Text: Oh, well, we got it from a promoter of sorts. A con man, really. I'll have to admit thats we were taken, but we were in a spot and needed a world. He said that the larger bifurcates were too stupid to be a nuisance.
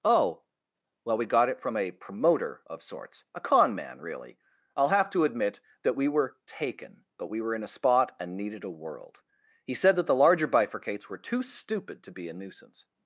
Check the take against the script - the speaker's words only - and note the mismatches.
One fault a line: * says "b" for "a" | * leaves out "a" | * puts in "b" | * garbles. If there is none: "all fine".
* says "that" for "thats"